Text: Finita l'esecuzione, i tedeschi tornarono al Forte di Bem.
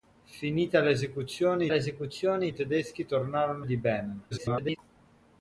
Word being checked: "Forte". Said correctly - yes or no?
no